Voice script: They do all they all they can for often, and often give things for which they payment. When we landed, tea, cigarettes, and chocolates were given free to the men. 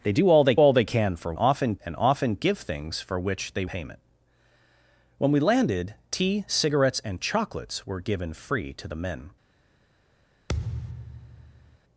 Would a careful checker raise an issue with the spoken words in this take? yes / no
no